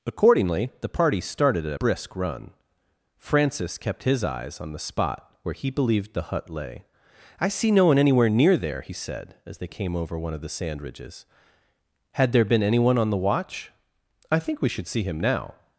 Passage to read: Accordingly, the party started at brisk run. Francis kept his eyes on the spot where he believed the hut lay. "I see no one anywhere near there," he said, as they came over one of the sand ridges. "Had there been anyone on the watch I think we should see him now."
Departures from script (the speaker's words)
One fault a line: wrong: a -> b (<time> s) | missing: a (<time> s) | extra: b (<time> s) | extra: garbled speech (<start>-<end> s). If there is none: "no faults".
no faults